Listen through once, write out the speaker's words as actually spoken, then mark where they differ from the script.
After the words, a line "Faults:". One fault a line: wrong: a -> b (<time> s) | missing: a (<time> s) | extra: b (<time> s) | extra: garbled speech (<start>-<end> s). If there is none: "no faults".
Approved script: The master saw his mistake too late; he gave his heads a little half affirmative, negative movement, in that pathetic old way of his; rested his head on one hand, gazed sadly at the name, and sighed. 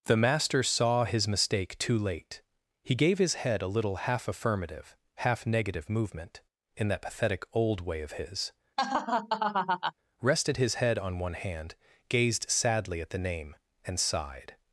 The master saw his mistake too late; he gave his head a little half affirmative, half negative movement, in that pathetic old way of his; rested his head on one hand, gazed sadly at the name, and sighed.
Faults:
wrong: heads -> head (3.3 s)
extra: half (5.2 s)